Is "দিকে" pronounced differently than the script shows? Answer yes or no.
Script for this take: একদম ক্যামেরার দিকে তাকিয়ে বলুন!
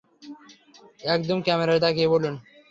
yes